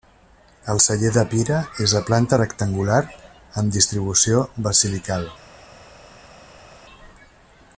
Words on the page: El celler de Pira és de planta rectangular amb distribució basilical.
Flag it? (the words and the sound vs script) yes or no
no